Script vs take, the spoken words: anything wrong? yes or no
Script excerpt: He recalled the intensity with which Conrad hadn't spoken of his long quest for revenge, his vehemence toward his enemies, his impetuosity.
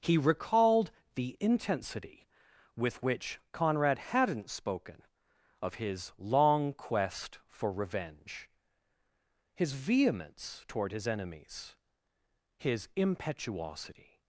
no